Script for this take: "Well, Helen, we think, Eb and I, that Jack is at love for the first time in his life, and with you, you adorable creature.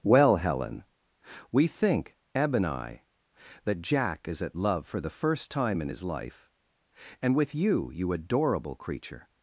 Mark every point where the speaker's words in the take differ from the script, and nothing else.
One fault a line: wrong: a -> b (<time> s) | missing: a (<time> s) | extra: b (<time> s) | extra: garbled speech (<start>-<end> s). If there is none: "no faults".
no faults